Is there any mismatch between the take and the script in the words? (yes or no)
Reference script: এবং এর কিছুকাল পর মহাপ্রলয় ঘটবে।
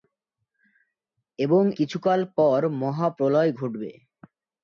yes